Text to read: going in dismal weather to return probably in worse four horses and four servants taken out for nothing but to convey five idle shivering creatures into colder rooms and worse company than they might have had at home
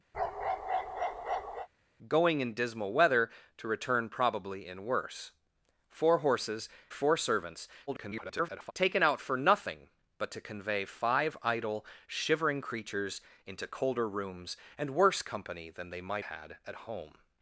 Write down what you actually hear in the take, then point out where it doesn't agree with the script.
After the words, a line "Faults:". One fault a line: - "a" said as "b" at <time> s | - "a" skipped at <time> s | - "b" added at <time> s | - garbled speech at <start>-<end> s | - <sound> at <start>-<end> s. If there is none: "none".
going in dismal weather to return probably in worse four horses four servants [garbled] taken out for nothing but to convey five idle shivering creatures into colder rooms and worse company than they might had at home
Faults:
- bark at 0.1-1.7 s
- "and" skipped at 6.7 s
- garbled speech at 7.9-8.7 s
- "have" skipped at 16.2 s